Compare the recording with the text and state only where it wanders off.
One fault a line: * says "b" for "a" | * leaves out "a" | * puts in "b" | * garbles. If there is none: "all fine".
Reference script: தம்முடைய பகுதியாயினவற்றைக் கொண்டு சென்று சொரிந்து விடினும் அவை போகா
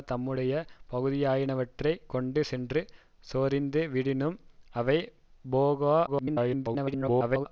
* garbles